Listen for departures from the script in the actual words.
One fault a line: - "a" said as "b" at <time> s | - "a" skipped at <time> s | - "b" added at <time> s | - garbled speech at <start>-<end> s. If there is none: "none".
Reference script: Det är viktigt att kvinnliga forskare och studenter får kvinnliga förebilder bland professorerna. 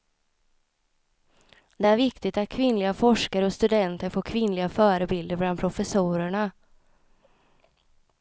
none